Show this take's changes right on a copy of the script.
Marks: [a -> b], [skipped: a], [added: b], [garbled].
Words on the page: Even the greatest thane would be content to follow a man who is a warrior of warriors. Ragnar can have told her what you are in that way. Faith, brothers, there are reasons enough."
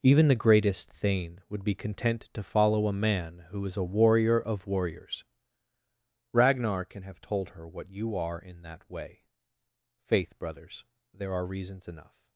Even the greatest thane would be content to follow a man who is a warrior of warriors. Ragnar can have told her what you are in that way. Faith, brothers, there are reasons enough."